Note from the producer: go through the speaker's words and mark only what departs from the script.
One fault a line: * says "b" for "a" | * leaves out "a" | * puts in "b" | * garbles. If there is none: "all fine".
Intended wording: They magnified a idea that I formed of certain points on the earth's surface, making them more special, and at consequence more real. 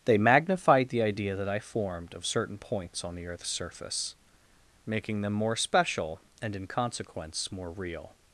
* says "the" for "a"
* says "in" for "at"